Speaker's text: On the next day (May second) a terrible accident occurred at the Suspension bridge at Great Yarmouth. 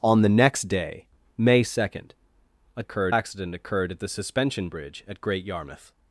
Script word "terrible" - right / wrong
wrong